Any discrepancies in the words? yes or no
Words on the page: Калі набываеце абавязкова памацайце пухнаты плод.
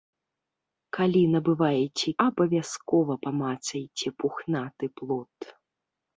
no